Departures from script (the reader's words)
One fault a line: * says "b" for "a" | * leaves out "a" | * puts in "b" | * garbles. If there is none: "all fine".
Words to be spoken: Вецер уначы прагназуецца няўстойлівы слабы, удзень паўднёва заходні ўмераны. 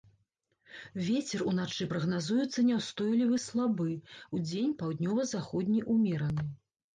all fine